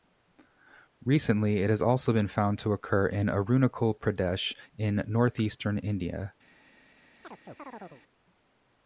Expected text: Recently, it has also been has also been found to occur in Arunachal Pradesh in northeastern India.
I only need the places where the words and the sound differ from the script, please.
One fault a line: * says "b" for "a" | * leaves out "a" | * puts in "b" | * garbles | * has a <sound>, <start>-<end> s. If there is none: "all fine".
* leaves out "has also been"
* has a chirp, 7.2-8.0 s